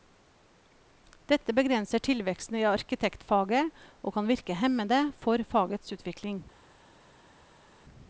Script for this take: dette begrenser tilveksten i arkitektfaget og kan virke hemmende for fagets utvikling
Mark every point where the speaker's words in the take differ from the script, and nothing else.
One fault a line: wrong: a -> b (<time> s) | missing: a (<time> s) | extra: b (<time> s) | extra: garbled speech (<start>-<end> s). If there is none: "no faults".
no faults